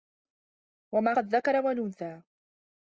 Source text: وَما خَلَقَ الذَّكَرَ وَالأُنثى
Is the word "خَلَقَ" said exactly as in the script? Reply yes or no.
no